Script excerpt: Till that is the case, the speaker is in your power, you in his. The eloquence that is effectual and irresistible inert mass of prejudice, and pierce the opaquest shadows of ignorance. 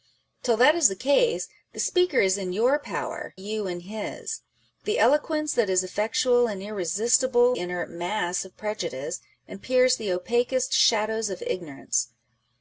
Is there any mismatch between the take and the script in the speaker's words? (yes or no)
no